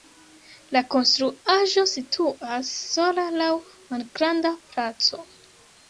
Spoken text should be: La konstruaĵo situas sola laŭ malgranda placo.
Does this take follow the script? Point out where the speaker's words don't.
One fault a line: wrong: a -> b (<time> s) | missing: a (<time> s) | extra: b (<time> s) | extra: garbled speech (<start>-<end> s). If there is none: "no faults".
no faults